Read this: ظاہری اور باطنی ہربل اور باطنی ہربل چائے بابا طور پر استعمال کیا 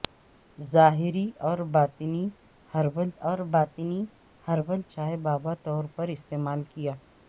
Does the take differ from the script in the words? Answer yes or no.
no